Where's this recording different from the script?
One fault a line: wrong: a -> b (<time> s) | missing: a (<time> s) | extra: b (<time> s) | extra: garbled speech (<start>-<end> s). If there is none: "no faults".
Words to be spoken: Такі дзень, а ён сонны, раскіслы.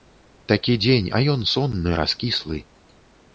no faults